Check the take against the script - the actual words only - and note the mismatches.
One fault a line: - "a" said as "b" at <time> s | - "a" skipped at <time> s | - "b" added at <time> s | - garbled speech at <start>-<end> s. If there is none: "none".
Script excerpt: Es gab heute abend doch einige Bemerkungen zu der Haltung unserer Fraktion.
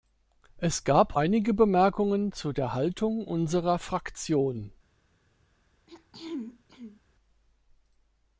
- "heute abend doch" skipped at 1.1 s